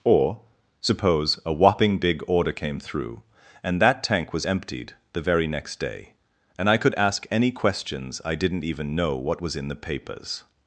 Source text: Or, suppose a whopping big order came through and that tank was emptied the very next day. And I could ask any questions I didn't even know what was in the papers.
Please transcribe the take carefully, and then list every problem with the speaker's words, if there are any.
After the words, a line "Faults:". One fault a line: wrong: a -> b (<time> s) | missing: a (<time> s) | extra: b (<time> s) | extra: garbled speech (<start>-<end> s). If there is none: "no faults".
Or, suppose a whopping big order came through and that tank was emptied the very next day. And I could ask any questions I didn't even know what was in the papers.
Faults:
no faults